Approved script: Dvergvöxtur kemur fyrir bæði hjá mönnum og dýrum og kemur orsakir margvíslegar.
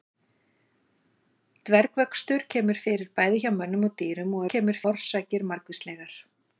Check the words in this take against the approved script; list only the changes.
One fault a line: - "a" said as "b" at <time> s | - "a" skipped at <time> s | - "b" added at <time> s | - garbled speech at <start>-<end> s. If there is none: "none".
none